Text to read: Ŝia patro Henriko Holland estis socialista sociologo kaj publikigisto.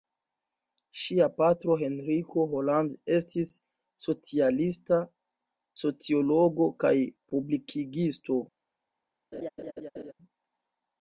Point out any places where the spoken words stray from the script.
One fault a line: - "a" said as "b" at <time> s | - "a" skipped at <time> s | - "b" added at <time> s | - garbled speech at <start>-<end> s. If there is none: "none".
none